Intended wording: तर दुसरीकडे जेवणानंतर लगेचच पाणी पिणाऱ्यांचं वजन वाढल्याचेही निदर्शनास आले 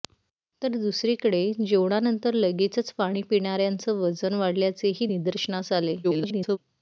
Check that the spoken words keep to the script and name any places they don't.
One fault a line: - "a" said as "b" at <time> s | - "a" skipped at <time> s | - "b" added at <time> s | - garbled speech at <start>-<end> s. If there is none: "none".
- garbled speech at 6.0-6.6 s